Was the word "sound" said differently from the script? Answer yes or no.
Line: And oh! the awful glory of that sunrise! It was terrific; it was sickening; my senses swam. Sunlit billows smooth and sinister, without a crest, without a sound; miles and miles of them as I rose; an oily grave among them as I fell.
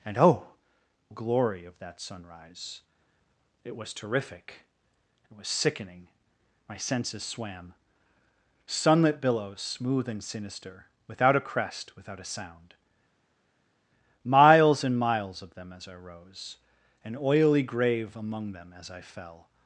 no